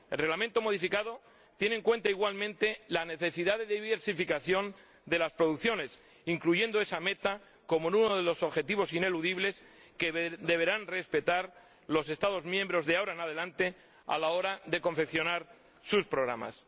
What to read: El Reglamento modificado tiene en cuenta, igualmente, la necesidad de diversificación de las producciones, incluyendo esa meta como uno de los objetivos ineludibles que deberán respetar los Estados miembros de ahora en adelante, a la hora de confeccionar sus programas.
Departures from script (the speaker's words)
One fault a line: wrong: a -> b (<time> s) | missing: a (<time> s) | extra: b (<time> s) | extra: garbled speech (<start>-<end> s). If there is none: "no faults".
no faults